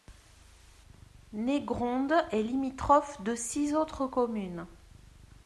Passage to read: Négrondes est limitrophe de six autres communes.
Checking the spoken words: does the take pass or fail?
pass